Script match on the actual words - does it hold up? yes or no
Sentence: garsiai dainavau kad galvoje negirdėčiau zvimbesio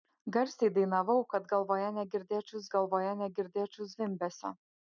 no